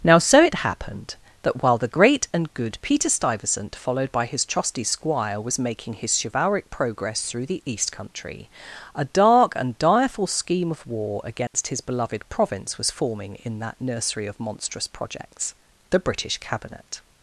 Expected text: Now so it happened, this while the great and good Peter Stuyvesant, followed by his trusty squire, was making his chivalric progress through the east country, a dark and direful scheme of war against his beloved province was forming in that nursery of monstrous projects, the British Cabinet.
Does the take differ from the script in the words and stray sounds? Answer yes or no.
yes